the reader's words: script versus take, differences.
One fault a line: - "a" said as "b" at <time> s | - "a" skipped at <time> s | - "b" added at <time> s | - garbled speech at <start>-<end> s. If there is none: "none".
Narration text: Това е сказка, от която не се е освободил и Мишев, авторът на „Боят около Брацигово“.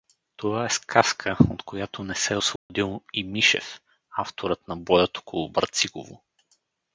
none